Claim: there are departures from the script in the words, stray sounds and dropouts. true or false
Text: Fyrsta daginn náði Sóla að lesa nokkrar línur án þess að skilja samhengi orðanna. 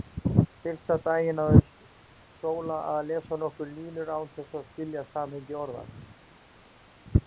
false